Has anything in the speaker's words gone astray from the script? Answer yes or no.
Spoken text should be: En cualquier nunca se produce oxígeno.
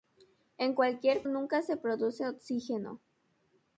no